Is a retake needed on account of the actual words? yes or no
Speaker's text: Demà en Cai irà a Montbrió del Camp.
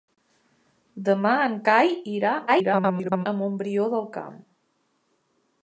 yes